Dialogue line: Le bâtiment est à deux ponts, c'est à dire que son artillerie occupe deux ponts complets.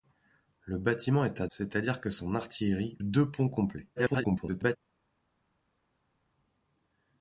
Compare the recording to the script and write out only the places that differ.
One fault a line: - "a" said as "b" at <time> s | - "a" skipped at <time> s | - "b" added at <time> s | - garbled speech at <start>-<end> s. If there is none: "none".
- "deux ponts" skipped at 1.5 s
- "occupe" skipped at 3.0 s
- garbled speech at 4.0-4.8 s